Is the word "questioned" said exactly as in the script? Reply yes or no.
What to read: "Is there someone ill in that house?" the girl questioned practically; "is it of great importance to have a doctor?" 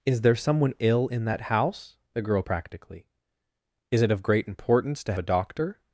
no